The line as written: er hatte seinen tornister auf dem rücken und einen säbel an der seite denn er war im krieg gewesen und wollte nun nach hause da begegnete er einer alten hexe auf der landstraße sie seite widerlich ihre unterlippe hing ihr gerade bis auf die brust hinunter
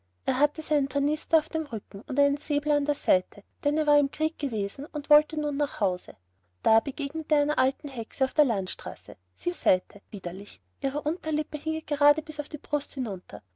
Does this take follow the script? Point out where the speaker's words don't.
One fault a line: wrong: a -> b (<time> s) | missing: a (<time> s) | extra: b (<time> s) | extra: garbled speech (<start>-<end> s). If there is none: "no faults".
no faults